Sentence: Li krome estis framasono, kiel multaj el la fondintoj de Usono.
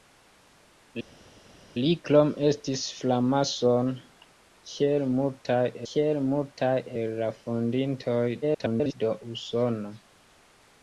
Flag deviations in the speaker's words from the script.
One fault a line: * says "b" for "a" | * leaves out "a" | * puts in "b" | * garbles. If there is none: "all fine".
* puts in "kiel multaj"
* garbles